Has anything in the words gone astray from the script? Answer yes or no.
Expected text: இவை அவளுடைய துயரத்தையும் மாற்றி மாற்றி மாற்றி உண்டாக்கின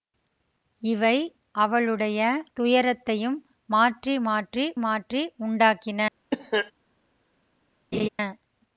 no